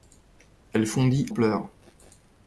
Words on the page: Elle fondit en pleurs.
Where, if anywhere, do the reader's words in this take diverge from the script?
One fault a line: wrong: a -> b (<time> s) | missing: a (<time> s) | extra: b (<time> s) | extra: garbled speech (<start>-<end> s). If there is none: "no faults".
missing: en (1.3 s)